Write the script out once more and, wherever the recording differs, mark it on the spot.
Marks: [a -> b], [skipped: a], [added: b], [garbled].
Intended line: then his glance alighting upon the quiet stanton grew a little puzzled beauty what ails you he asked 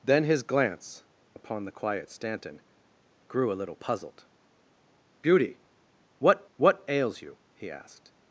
then his glance [skipped: alighting] upon the quiet stanton grew a little puzzled beauty what [added: what] ails you he asked